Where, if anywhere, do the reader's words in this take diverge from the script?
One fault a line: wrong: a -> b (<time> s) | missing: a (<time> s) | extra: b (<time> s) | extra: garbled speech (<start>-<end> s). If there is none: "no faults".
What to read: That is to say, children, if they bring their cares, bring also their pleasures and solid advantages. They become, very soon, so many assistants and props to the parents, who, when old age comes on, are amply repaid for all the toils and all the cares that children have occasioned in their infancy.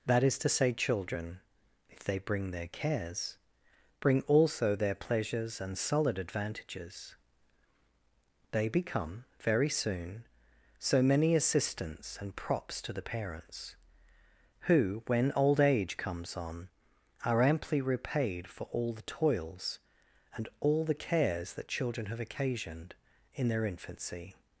no faults